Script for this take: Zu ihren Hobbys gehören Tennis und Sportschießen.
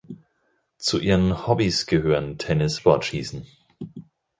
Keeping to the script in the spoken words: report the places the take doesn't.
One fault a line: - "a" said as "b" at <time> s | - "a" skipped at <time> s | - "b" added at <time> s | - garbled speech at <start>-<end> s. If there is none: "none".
- "und" skipped at 2.8 s